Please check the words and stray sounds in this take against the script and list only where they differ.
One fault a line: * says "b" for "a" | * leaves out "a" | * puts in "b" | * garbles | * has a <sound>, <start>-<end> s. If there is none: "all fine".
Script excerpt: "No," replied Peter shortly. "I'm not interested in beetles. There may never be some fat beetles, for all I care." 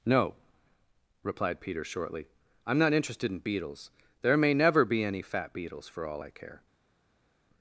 * says "any" for "some"